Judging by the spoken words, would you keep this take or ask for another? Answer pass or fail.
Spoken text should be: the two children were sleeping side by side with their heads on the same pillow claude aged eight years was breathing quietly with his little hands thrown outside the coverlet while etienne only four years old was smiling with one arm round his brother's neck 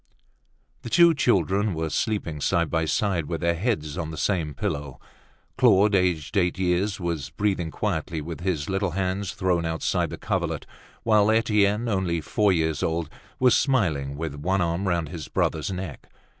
pass